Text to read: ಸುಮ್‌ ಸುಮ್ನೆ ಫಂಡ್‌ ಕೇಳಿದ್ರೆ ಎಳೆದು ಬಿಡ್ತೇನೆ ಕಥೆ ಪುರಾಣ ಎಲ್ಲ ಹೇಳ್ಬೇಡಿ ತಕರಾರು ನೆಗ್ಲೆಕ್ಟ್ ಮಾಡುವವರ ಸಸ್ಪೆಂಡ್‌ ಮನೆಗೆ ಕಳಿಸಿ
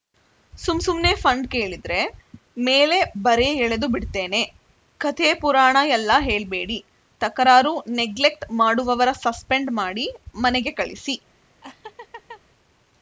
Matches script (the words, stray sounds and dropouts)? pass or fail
fail